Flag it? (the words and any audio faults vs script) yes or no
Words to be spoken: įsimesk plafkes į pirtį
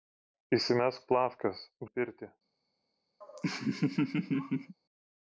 yes